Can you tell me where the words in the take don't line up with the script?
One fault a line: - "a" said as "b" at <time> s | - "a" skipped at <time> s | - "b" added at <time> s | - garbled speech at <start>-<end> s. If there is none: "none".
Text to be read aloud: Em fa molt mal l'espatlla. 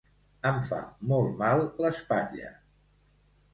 none